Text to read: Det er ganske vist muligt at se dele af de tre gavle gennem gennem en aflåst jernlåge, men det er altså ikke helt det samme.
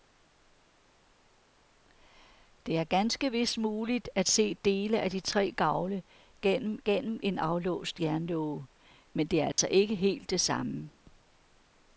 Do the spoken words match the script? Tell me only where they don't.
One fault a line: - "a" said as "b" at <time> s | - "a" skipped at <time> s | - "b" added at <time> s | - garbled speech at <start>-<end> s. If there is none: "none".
none